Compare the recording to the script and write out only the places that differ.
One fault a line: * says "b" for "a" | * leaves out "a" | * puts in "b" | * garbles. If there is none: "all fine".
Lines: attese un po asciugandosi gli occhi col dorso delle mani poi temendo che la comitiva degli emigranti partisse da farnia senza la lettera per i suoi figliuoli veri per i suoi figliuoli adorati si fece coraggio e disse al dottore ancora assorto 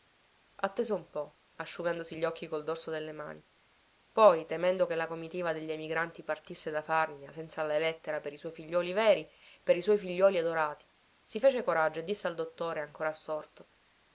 all fine